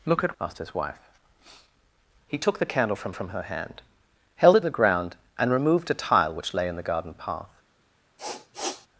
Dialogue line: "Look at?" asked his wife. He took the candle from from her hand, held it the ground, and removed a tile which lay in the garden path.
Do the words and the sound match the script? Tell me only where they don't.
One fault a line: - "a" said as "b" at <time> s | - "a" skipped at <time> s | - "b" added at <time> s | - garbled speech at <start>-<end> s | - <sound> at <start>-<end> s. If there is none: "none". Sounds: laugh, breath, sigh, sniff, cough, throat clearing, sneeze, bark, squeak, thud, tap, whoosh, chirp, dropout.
- sniff at 8.2-8.9 s